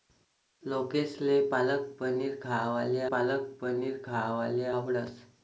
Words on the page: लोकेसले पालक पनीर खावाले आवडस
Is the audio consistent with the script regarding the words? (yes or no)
no